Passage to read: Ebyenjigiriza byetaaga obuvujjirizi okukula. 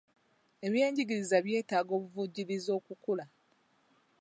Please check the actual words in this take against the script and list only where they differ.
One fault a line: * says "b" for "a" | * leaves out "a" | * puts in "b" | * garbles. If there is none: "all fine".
all fine